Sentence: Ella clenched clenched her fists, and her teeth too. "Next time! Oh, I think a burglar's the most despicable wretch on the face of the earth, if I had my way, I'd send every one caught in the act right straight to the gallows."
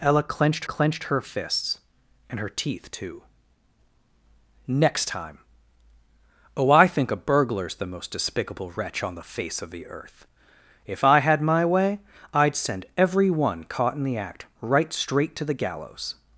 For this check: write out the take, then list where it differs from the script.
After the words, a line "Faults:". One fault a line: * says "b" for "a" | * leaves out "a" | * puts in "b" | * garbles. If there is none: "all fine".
Ella clenched clenched her fists, and her teeth too. "Next time! Oh, I think a burglar's the most despicable wretch on the face of the earth, if I had my way, I'd send every one caught in the act right straight to the gallows."
Faults:
all fine